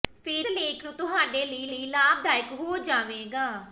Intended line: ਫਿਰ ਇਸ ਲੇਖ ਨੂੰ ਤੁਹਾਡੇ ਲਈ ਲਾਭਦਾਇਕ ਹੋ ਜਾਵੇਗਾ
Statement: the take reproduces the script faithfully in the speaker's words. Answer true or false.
false